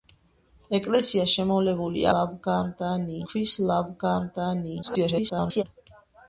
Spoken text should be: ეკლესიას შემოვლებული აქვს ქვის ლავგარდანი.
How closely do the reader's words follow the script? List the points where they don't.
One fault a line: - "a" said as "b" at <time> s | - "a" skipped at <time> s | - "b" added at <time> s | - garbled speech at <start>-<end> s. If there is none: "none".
- "აქვს" said as "ლავგარდანი" at 2.2 s
- garbled speech at 4.8-5.6 s